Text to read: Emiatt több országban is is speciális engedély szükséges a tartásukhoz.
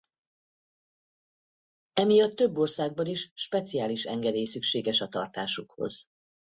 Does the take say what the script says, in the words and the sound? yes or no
no